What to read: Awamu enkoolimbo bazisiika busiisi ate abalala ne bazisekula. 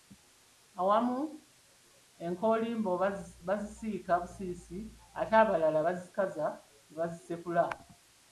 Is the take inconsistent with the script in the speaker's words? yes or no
yes